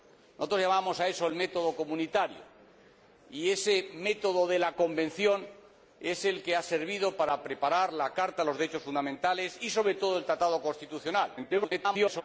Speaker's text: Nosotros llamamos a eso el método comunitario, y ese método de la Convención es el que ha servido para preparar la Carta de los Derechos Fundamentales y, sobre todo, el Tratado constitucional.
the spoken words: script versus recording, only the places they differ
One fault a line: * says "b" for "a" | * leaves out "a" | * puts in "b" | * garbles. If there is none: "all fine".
* garbles